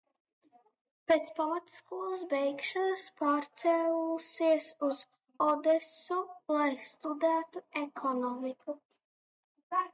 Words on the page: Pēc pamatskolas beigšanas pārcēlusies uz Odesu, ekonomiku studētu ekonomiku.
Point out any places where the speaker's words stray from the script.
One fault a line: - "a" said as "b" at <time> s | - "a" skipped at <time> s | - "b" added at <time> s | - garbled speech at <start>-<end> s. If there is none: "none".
- "ekonomiku" said as "lai" at 6.6 s